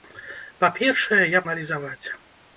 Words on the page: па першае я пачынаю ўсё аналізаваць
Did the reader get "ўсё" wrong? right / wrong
wrong